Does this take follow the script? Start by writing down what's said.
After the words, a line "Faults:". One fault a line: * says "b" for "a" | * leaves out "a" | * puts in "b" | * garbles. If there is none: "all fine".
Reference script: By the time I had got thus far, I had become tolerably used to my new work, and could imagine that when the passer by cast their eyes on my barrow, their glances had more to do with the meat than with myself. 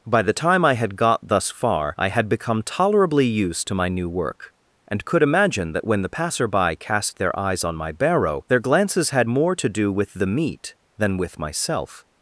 By the time I had got thus far, I had become tolerably used to my new work, and could imagine that when the passer by cast their eyes on my barrow, their glances had more to do with the meat than with myself.
Faults:
all fine